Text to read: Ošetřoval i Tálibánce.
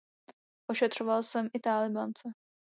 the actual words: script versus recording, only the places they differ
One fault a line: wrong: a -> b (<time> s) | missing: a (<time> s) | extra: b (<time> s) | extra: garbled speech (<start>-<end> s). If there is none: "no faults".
extra: jsem (1.2 s)